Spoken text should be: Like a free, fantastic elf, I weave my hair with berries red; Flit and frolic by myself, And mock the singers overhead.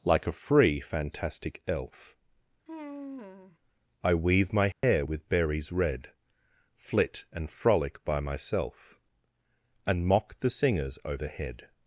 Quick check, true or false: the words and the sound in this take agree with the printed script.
false